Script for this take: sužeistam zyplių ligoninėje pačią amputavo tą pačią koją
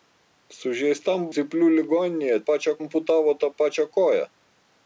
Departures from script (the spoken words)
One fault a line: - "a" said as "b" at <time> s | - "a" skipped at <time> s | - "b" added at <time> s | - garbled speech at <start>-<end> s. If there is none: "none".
none